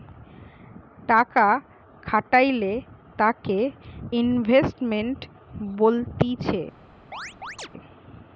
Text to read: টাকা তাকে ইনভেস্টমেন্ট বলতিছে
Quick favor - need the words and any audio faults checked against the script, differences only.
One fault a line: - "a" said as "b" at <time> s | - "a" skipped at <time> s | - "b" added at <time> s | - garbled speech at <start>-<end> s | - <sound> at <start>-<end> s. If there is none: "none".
- "খাটাইলে" added at 2.0 s
- chirp at 7.1-7.7 s